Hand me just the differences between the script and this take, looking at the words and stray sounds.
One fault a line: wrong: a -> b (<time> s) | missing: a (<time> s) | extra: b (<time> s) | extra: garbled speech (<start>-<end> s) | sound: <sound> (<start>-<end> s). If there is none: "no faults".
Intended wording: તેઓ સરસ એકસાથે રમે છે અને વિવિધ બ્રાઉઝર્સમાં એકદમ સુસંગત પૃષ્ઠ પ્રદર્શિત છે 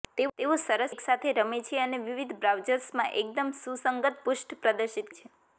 no faults